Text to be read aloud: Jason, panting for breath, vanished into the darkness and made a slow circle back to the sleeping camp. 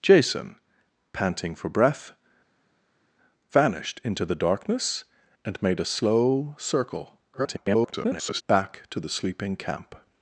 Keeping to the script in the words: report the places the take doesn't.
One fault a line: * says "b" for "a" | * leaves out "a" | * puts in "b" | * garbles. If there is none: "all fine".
* garbles